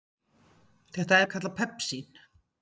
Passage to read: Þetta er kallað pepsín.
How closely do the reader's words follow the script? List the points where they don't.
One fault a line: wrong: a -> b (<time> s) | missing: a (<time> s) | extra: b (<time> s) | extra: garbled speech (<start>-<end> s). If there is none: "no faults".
no faults